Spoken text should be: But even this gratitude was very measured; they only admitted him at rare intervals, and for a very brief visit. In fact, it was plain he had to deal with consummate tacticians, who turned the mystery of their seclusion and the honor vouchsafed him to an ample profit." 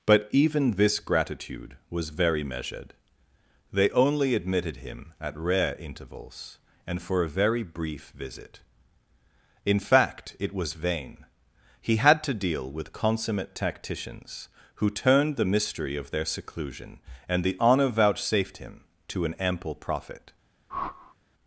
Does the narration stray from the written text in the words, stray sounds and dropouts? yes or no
yes